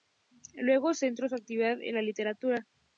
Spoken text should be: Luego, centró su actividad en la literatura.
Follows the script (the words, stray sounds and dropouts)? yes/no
yes